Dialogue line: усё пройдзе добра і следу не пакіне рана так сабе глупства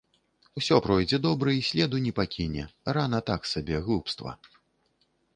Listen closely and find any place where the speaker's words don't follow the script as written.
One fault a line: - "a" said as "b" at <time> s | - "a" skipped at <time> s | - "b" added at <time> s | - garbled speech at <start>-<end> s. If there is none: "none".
none